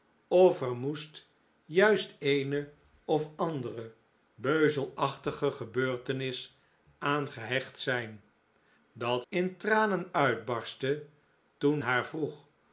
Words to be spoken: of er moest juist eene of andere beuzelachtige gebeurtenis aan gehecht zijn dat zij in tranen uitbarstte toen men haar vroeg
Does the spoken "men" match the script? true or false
false